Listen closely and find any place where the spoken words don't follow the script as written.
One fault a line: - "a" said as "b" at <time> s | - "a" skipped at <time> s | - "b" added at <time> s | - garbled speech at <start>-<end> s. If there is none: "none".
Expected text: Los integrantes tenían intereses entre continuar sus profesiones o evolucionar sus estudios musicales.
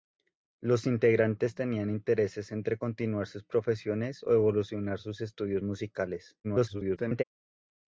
- garbled speech at 6.4-7.2 s